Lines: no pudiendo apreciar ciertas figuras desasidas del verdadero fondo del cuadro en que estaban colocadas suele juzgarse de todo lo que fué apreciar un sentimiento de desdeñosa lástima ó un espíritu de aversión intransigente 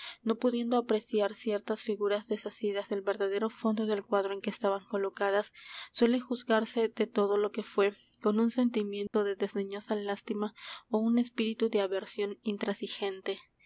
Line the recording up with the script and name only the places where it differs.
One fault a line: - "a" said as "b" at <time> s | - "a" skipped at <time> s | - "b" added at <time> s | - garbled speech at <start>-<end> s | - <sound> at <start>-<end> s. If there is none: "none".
- "apreciar" said as "con" at 8.2 s
- dropout at 9.1-9.1 s